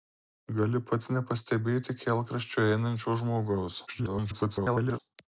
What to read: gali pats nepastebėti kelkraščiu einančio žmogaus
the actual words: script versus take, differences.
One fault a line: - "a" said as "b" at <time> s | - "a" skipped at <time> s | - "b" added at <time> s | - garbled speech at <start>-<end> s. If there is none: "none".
- garbled speech at 3.9-5.0 s